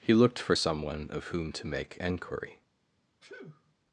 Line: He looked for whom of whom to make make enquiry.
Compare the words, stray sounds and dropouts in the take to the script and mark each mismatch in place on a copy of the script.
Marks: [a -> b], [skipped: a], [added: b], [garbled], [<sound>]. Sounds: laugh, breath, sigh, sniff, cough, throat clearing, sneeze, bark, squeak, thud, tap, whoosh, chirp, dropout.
He looked for [whom -> someone] of whom to make [skipped: make] enquiry. [sneeze]